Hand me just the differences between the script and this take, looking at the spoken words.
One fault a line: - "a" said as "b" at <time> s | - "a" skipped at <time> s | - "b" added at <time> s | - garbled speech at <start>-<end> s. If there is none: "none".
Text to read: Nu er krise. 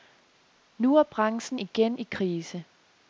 - "branchen igen i" added at 1.0 s